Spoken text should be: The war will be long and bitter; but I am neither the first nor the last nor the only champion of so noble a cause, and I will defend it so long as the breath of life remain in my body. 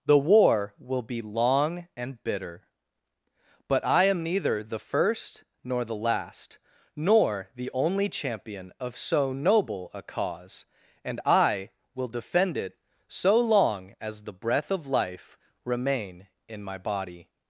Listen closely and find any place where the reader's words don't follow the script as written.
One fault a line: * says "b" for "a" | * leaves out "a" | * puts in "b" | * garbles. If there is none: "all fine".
all fine